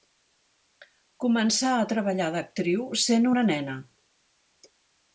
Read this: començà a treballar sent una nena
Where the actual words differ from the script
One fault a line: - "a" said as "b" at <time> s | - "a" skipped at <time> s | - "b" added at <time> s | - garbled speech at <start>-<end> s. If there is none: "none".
- "d'actriu" added at 2.4 s